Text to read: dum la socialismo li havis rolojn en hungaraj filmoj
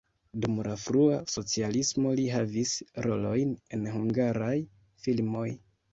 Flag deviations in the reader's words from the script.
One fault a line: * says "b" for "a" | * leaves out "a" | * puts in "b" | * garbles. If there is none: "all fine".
* puts in "frua"